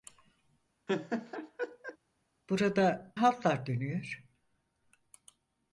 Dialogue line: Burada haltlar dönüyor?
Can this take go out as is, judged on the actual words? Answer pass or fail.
pass